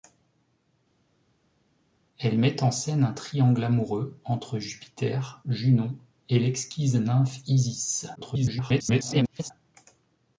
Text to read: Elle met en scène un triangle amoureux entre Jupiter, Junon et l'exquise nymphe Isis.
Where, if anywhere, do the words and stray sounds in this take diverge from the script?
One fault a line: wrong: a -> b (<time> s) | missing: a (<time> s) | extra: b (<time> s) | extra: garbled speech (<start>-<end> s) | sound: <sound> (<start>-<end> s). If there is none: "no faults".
extra: garbled speech (8.2-9.5 s)